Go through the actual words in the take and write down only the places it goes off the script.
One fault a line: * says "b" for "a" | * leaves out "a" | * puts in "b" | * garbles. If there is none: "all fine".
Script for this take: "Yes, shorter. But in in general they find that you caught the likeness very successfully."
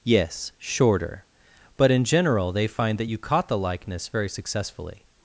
* leaves out "in"